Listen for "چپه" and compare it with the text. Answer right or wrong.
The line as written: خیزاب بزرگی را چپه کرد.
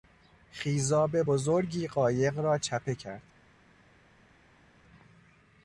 right